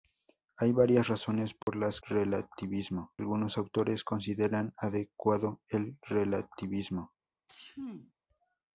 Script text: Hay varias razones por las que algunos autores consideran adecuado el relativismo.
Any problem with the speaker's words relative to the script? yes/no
yes